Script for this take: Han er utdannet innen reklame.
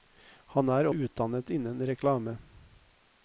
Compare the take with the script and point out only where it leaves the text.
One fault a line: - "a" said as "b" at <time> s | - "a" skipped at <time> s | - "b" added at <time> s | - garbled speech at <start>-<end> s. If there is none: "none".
none